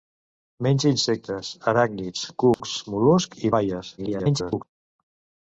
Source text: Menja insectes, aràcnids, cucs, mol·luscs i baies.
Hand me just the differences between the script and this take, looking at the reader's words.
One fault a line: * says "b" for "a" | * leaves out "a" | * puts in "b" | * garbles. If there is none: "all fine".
* garbles